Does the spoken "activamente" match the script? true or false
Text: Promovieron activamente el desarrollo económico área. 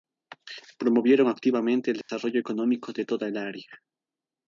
true